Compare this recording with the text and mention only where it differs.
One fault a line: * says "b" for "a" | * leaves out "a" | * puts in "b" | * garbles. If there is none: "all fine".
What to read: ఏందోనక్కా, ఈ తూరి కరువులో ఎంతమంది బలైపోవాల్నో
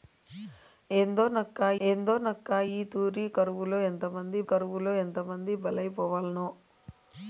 * puts in "ఏందోనక్కా"
* puts in "కరువులో ఎంతమంది"